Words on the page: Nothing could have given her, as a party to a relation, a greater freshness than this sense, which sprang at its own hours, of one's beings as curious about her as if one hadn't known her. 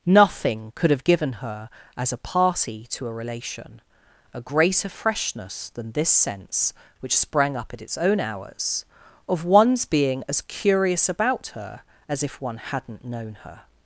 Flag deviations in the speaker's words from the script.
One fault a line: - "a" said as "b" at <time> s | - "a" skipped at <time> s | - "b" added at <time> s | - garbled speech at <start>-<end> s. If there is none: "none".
- "up" added at 7.5 s
- "beings" said as "being" at 9.8 s